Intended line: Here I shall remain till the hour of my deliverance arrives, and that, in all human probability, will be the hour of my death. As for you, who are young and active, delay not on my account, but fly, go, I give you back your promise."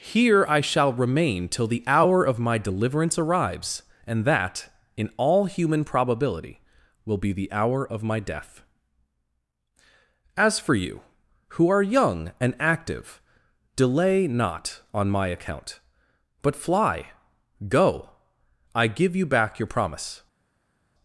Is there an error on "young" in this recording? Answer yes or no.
no